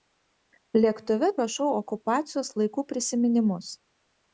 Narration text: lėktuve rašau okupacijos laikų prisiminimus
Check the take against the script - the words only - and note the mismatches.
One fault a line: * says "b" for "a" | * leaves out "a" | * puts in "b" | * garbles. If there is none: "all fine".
all fine